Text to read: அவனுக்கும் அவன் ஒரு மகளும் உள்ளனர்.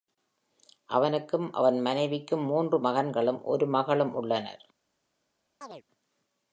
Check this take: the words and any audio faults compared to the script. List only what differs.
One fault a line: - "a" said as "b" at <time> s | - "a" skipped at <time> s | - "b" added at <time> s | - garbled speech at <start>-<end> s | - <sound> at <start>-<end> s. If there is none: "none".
- "மனைவிக்கும் மூன்று மகன்களும்" added at 1.8 s
- chirp at 5.6-5.8 s